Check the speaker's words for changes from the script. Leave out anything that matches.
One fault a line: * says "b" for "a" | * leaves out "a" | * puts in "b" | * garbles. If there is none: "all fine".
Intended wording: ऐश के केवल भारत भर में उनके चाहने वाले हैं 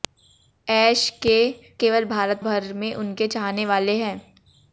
all fine